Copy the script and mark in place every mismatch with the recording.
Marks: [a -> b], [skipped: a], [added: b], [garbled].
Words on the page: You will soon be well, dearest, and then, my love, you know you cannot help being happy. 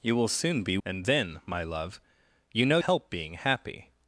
You will soon be [skipped: well, dearest,] and then, my love, you know [skipped: you cannot] help being happy.